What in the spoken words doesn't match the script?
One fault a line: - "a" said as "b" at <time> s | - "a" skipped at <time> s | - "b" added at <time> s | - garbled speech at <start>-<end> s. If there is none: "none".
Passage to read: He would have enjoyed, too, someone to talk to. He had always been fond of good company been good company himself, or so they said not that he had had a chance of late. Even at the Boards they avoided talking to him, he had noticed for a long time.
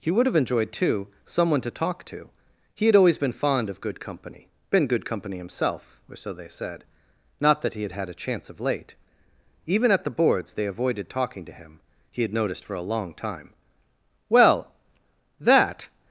- "Well that" added at 14.3 s